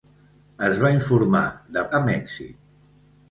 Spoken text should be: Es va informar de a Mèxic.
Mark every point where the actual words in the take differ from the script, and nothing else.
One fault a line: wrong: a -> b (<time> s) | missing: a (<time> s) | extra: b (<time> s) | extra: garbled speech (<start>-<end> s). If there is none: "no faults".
no faults